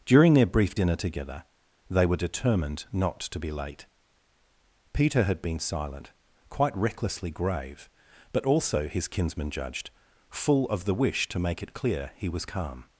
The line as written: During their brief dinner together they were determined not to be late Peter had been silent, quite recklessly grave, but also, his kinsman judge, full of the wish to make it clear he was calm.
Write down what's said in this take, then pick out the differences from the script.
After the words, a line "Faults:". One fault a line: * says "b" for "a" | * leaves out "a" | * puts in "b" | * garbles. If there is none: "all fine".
During their brief dinner together they were determined not to be late Peter had been silent, quite recklessly grave, but also, his kinsman judged, full of the wish to make it clear he was calm.
Faults:
* says "judged" for "judge"